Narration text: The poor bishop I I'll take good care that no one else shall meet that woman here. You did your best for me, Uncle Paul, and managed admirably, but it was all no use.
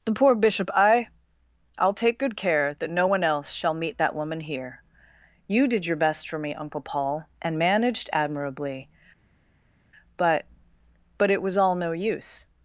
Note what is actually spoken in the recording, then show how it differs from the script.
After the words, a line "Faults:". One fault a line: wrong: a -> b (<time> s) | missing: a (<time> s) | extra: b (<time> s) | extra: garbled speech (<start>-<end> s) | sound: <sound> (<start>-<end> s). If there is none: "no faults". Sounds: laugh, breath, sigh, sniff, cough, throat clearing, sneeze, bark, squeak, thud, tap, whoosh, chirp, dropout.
The poor bishop I I'll take good care that no one else shall meet that woman here. You did your best for me, Uncle Paul, and managed admirably, but but it was all no use.
Faults:
extra: but (11.2 s)